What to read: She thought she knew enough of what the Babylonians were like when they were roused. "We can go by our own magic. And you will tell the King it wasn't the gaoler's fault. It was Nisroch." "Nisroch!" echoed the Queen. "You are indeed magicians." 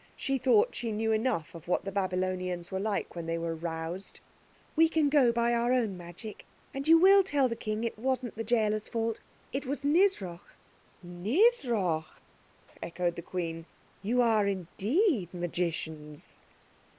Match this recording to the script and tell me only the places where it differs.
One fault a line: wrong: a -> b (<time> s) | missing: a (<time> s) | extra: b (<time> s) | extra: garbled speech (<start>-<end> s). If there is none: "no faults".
no faults